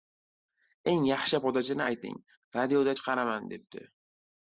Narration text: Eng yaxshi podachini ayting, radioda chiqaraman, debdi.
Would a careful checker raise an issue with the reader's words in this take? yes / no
no